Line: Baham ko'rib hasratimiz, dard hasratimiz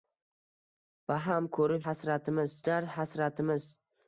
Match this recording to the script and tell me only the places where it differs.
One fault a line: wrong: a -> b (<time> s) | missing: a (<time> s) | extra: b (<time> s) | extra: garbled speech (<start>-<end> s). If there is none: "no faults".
no faults